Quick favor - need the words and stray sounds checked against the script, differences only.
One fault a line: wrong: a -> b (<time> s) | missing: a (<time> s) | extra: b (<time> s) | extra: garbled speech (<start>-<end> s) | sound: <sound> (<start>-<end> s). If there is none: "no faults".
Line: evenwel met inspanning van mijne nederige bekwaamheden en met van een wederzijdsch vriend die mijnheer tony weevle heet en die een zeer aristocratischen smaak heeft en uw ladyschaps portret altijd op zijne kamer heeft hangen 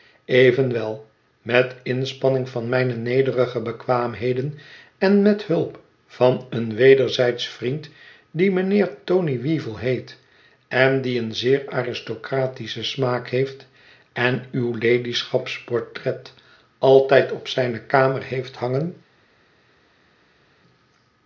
extra: hulp (5.5 s)